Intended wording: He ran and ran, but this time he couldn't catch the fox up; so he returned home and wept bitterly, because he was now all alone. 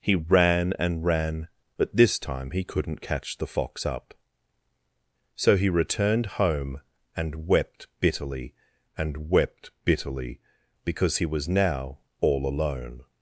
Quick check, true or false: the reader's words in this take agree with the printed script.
false